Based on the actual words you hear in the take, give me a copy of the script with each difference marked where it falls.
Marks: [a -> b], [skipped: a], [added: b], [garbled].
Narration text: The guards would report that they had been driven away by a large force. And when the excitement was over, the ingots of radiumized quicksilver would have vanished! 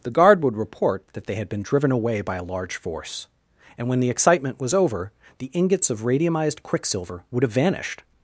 The [guards -> guard] would report that they had been driven away by a large force. And when the excitement was over, the ingots of radiumized quicksilver would have vanished!